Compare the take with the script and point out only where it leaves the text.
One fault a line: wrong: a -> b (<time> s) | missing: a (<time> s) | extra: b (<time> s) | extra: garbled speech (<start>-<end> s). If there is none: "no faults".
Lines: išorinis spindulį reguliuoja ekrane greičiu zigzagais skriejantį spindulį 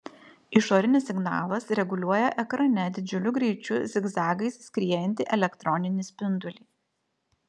wrong: spindulį -> signalas (1.1 s)
extra: didžiuliu (3.0 s)
extra: elektroninį (5.4 s)